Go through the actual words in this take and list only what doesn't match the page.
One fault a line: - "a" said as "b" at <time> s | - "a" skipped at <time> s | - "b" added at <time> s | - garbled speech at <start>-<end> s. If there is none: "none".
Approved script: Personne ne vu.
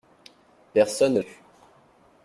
none